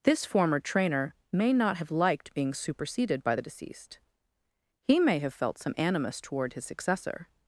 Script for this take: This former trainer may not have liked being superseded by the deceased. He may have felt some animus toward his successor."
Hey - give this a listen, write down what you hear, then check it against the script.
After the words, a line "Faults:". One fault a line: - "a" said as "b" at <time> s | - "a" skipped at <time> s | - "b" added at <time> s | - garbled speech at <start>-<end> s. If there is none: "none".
This former trainer may not have liked being superseded by the deceased. He may have felt some animus toward his successor."
Faults:
none